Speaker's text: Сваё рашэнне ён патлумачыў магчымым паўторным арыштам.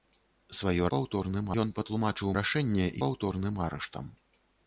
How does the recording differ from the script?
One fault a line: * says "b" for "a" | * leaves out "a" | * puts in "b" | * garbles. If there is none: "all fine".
* says "паўторным" for "рашэнне"
* says "рашэнне" for "магчымым"